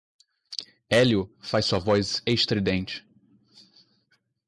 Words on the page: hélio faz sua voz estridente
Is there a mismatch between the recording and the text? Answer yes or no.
no